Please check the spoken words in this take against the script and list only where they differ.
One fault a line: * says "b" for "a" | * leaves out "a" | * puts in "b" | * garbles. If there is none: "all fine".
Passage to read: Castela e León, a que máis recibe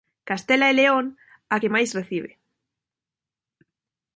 all fine